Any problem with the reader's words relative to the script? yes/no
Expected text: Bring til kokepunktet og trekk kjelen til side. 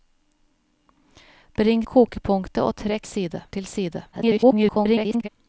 yes